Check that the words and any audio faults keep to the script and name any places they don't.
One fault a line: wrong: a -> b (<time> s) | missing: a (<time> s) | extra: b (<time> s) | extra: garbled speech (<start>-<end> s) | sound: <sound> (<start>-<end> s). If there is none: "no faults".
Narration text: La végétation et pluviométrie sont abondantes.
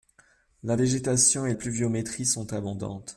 no faults